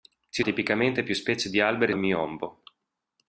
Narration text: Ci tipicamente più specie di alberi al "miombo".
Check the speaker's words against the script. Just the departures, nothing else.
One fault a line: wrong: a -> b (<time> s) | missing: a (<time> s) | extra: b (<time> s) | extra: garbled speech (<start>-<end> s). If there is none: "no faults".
no faults